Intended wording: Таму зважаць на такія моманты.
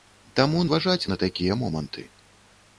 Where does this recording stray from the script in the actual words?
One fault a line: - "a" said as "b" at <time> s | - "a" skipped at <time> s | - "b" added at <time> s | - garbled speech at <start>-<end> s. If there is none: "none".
none